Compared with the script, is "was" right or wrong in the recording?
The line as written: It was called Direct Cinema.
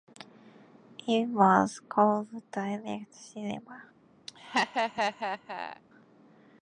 right